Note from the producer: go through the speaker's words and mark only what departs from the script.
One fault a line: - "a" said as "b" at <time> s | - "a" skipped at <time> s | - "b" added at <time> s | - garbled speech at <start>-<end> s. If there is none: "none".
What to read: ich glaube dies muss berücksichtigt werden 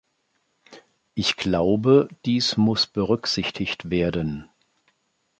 none